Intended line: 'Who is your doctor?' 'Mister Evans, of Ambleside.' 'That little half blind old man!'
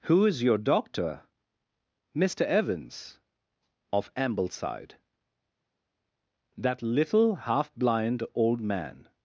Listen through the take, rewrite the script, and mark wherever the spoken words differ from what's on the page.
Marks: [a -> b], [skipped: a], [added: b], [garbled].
'Who is your doctor?' 'Mister Evans, of Ambleside.' 'That little half blind old man!'